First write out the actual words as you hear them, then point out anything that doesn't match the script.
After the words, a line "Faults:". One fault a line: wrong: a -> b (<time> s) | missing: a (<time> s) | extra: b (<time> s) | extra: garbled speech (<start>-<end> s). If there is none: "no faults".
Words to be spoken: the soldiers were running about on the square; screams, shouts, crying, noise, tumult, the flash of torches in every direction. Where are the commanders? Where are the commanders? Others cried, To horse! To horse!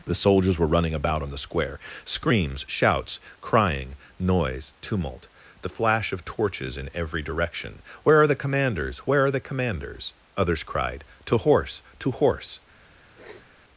the soldiers were running about on the square; screams, shouts, crying, noise, tumult, the flash of torches in every direction. Where are the commanders? Where are the commanders? Others cried, To horse! To horse!
Faults:
no faults